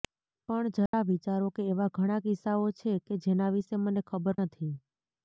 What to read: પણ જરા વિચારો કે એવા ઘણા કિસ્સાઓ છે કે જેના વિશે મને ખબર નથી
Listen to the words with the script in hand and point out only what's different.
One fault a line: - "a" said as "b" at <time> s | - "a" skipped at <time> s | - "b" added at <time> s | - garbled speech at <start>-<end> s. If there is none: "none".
none